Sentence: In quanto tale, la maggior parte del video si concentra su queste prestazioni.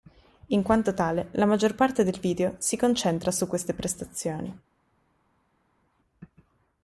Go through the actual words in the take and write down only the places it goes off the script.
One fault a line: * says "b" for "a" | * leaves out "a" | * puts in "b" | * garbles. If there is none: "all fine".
all fine